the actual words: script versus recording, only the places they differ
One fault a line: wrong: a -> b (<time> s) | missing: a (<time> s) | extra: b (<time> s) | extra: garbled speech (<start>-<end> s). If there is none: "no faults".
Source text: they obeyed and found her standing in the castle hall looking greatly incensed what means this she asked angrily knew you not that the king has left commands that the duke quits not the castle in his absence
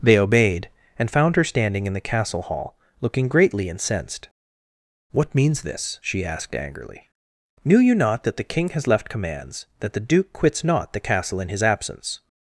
no faults